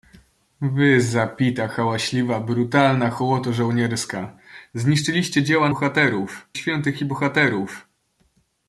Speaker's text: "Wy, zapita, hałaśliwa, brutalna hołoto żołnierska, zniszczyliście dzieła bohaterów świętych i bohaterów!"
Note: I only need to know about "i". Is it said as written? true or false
true